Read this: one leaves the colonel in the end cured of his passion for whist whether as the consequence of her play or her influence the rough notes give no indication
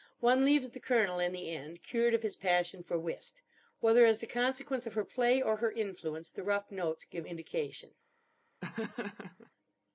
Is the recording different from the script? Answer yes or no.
yes